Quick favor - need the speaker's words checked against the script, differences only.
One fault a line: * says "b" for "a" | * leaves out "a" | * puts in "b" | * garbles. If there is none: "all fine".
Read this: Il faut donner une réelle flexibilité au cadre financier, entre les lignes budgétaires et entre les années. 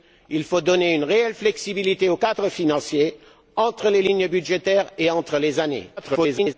* garbles